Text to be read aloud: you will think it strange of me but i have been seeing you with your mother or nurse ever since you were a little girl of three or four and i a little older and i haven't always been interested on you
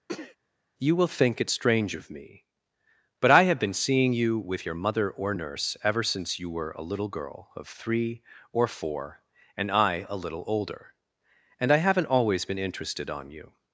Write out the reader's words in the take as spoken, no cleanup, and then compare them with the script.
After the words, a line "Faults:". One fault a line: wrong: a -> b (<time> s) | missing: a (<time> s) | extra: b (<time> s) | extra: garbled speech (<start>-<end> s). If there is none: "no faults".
you will think it strange of me but i have been seeing you with your mother or nurse ever since you were a little girl of three or four and i a little older and i haven't always been interested on you
Faults:
no faults